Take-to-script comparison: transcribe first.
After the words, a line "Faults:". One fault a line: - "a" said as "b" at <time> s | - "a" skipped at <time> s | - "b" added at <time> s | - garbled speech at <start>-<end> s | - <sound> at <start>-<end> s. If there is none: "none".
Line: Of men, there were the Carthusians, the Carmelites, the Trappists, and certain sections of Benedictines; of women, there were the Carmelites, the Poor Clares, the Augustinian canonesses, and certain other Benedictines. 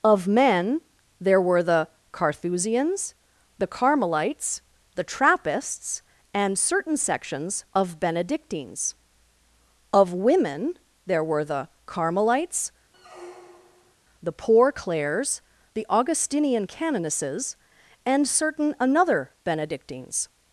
Of men, there were the Carthusians, the Carmelites, the Trappists, and certain sections of Benedictines; of women, there were the Carmelites, the Poor Clares, the Augustinian canonesses, and certain another Benedictines.
Faults:
- squeak at 12.9-13.9 s
- "other" said as "another" at 18.8 s